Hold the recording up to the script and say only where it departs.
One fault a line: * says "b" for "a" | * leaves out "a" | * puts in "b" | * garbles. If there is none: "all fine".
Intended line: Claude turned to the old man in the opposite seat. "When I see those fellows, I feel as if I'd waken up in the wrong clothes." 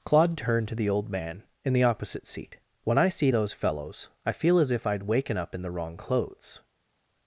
all fine